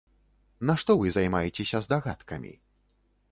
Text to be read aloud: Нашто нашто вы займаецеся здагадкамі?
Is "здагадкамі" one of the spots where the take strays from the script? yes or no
no